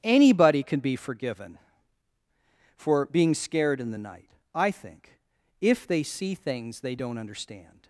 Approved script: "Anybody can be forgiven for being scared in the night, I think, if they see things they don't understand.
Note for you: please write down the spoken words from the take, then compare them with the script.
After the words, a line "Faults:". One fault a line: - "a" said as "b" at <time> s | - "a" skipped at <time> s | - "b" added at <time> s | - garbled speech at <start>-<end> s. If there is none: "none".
"Anybody can be forgiven for being scared in the night, I think, if they see things they don't understand.
Faults:
none